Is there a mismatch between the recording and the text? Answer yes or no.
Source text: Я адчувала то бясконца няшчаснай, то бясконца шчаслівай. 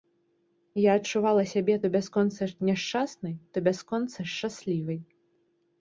yes